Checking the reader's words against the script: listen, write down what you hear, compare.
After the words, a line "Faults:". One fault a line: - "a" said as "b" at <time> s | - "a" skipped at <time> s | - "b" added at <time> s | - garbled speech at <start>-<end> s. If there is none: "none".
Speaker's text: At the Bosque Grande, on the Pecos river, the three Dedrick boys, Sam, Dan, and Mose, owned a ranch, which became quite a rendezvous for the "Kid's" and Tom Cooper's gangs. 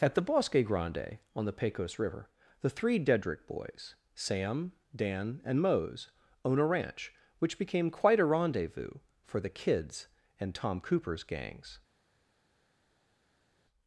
At the Bosque Grande, on the Pecos river, the three Dedrick boys, Sam, Dan, and Mose, own a ranch, which became quite a rendezvous for the "Kid's" and Tom Cooper's gangs.
Faults:
- "owned" said as "own" at 6.4 s